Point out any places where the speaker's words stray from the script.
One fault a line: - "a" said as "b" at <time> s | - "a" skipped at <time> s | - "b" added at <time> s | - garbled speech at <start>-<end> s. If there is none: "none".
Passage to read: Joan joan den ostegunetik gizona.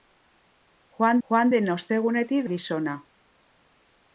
none